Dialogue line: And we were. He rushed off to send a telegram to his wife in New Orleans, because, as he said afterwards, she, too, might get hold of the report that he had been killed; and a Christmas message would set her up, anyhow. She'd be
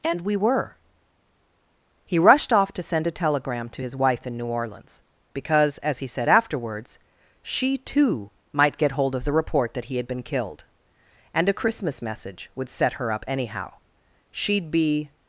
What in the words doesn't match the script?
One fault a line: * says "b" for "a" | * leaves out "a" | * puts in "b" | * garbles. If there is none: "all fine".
all fine